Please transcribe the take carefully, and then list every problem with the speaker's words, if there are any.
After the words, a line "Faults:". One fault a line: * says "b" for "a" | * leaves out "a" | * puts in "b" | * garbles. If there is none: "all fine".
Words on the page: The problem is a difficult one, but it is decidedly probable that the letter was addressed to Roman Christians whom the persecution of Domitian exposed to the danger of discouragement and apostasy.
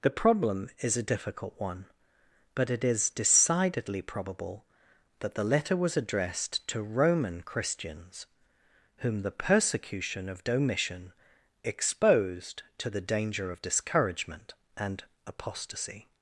The problem is a difficult one, but it is decidedly probable that the letter was addressed to Roman Christians whom the persecution of Domitian exposed to the danger of discouragement and apostasy.
Faults:
all fine